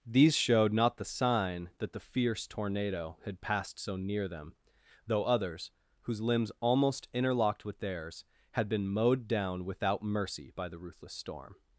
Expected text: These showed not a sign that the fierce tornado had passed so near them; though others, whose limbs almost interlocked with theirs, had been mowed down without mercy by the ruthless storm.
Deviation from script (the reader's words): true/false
true